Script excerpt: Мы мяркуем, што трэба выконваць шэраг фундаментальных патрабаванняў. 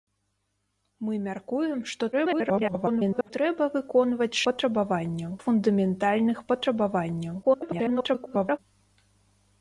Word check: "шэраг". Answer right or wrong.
wrong